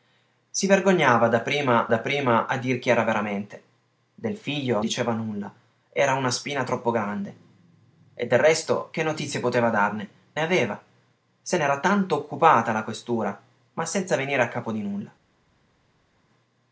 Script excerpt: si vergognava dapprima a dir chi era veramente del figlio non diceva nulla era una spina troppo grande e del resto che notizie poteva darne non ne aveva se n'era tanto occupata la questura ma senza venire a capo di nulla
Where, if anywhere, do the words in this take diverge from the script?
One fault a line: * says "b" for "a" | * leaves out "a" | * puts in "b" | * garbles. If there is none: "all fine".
* puts in "dapprima"
* leaves out "non"
* leaves out "non"